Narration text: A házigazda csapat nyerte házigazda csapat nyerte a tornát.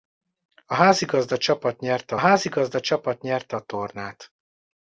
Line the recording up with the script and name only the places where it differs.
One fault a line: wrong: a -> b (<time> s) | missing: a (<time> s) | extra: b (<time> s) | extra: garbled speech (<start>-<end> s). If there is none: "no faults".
no faults